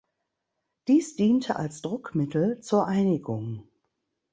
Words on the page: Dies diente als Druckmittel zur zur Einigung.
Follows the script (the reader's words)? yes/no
no